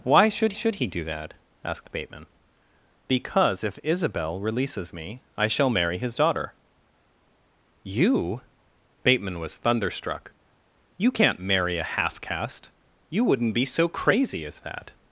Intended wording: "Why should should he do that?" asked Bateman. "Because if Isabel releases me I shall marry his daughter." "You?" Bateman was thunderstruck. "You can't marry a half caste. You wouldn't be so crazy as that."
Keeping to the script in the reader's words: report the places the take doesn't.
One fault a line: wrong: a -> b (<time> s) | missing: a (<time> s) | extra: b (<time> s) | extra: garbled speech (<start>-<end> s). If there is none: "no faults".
no faults